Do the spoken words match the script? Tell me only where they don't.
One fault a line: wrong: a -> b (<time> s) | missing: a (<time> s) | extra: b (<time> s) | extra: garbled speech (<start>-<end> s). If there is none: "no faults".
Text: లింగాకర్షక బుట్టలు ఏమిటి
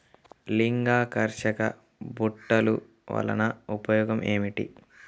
extra: వలన ఉపయోగం (3.1 s)